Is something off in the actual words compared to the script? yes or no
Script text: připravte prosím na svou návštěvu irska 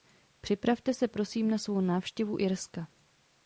yes